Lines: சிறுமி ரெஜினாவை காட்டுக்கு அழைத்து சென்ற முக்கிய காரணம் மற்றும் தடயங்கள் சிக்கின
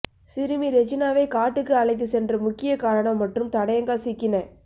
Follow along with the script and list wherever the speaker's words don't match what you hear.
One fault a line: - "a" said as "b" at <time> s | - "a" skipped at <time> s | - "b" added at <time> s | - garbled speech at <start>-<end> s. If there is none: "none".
none